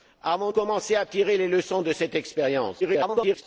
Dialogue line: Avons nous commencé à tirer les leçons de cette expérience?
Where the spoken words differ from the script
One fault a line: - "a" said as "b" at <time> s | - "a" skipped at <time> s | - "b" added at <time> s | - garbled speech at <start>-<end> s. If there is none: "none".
- "nous" skipped at 0.5 s
- garbled speech at 2.8-3.4 s